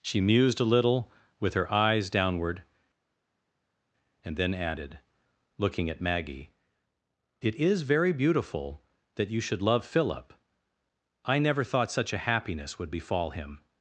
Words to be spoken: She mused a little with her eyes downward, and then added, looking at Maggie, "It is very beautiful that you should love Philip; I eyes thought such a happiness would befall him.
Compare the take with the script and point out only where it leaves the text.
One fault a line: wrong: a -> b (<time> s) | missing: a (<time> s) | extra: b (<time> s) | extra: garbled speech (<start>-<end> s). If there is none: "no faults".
wrong: eyes -> never (11.4 s)